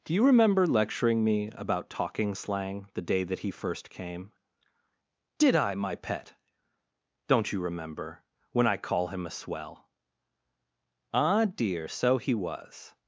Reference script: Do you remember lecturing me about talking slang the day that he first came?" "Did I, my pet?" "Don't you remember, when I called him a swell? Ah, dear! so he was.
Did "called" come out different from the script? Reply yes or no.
yes